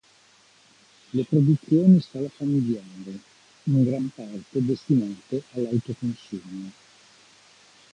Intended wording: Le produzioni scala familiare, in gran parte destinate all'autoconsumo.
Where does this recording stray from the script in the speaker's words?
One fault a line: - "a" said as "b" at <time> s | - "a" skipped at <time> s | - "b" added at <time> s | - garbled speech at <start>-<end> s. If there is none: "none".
none